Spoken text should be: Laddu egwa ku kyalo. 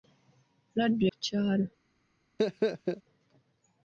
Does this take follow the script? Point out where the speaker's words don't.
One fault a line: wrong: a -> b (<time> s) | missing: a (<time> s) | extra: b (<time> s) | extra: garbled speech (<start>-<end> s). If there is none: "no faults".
missing: egwa (1.0 s)